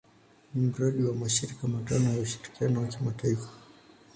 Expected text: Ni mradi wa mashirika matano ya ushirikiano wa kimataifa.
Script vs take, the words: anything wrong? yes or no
no